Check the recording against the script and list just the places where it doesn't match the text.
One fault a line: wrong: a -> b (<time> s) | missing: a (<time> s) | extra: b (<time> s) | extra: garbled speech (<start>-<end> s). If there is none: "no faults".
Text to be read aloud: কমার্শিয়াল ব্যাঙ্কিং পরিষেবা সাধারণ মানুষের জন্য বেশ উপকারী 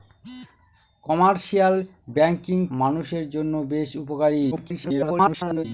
missing: পরিষেবা সাধারণ (2.6 s)
extra: garbled speech (4.5-5.7 s)